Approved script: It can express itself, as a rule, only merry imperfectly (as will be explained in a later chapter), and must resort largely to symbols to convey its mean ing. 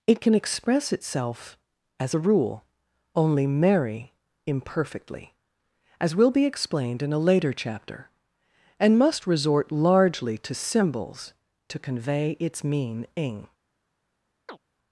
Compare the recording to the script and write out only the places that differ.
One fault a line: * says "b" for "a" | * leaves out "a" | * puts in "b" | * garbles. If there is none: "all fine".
all fine